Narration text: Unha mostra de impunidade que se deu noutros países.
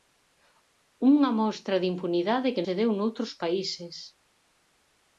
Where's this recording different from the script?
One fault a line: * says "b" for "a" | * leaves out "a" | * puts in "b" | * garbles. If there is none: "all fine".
all fine